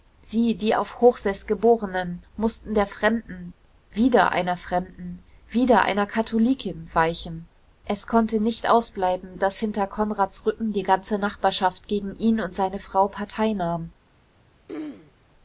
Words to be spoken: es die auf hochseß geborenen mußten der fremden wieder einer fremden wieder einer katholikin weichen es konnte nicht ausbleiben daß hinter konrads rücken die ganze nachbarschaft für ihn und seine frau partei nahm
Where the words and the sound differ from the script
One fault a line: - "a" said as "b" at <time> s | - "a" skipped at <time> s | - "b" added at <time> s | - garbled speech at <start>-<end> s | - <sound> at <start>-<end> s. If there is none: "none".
- "es" said as "sie" at 0.2 s
- "für" said as "gegen" at 11.9 s
- throat clearing at 14.7-15.1 s